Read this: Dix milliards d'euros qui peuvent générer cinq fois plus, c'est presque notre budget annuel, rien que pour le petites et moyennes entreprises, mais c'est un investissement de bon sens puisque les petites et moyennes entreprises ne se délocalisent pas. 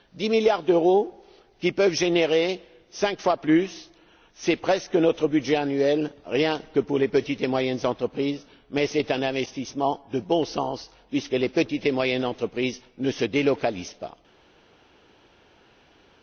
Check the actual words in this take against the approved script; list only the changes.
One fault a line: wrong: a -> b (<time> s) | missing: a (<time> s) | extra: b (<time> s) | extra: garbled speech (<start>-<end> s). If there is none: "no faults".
wrong: le -> les (7.0 s)